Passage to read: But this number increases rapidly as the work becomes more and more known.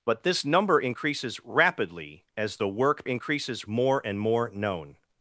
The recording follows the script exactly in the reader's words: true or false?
false